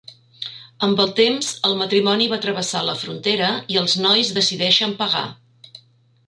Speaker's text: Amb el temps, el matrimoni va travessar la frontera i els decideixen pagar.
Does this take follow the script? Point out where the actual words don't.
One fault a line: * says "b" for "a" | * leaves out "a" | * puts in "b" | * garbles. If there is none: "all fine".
* puts in "nois"